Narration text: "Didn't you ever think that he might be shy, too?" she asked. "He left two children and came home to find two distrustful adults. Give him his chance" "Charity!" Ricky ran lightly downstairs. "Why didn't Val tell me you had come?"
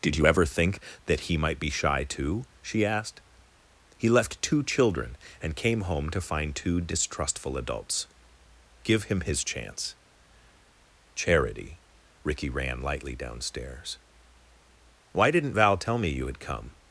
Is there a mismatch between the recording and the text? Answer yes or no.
yes